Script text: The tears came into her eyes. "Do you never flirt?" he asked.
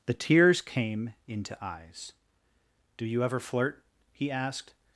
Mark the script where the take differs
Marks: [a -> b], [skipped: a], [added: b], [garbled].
The tears came into [skipped: her] eyes. "Do you [never -> ever] flirt?" he asked.